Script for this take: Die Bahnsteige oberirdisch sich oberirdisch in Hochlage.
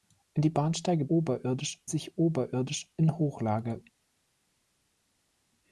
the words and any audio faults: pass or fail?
pass